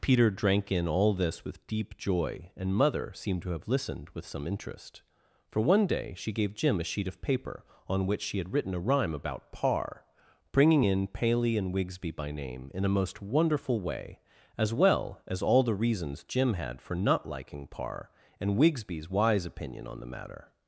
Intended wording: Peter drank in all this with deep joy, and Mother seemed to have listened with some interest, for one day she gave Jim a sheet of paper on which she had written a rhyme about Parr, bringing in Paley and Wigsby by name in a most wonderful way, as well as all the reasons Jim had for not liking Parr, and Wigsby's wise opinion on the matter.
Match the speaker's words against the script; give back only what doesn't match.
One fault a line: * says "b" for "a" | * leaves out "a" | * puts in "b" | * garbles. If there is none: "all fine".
all fine